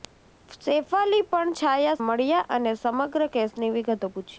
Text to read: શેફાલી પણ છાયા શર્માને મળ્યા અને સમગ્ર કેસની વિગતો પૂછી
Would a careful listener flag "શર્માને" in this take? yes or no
yes